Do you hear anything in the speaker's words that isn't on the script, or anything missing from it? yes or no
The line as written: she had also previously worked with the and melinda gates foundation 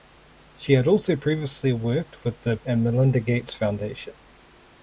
no